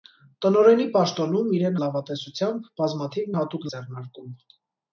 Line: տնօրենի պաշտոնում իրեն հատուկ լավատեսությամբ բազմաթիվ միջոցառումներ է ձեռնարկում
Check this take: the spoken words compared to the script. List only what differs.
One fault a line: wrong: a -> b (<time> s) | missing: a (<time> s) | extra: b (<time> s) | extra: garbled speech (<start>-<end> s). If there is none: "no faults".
missing: հատուկ (1.8 s)
wrong: միջոցառումներ -> հատուկ (3.4 s)